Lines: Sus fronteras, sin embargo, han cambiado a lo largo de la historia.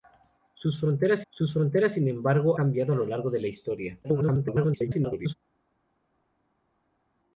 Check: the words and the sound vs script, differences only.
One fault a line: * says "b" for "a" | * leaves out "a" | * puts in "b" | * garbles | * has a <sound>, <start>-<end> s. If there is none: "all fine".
* puts in "sus fronteras"
* leaves out "han"
* garbles